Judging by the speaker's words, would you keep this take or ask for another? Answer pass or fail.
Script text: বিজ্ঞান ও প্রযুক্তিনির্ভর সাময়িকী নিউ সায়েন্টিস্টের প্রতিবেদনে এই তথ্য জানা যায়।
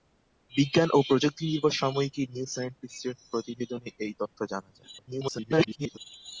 fail